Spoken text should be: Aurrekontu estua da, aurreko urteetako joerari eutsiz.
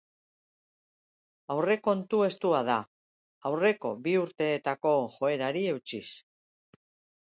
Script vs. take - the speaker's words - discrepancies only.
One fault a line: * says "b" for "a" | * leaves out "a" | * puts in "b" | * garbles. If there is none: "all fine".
* puts in "bi"